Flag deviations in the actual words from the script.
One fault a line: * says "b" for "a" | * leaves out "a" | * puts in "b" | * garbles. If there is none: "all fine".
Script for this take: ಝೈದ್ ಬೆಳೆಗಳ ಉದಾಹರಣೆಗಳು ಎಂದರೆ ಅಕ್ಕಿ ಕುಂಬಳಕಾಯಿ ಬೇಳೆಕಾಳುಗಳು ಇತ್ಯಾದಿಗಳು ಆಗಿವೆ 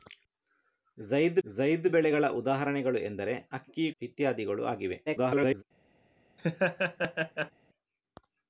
* puts in "ಝೈದ್"
* leaves out "ಕುಂಬಳಕಾಯಿ ಬೇಳೆಕಾಳುಗಳು"
* garbles